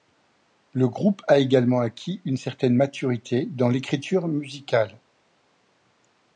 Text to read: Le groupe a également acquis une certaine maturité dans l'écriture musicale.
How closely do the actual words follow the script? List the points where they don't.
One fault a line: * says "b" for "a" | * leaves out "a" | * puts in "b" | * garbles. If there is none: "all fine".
all fine